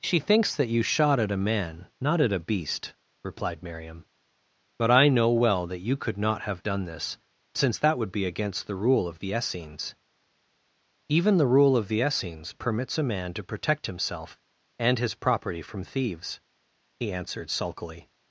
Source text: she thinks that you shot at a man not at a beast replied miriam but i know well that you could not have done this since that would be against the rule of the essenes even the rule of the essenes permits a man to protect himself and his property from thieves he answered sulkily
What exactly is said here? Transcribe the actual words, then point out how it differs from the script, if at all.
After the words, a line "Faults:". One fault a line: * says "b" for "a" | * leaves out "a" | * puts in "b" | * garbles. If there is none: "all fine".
she thinks that you shot at a man not at a beast replied miriam but i know well that you could not have done this since that would be against the rule of the essenes even the rule of the essenes permits a man to protect himself and his property from thieves he answered sulkily
Faults:
all fine